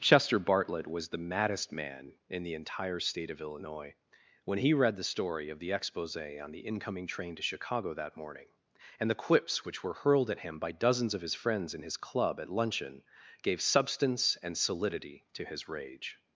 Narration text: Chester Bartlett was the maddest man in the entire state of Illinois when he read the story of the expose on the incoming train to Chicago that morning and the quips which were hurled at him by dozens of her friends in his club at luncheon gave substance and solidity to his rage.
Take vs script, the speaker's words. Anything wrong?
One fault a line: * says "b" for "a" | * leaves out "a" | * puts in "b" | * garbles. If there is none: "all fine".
* says "his" for "her"